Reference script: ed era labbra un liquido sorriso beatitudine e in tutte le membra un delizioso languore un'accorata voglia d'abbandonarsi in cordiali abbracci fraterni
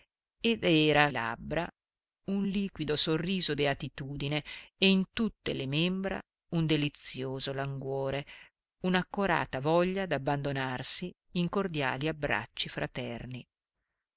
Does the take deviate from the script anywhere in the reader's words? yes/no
no